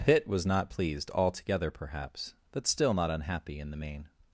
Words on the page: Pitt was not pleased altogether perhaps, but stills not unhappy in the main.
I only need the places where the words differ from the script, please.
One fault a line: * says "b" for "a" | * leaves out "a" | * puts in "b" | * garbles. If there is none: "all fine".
* says "still" for "stills"